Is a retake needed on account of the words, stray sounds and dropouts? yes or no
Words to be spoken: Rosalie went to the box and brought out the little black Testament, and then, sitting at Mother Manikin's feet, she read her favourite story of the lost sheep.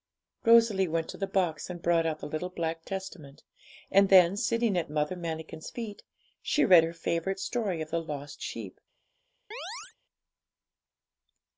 yes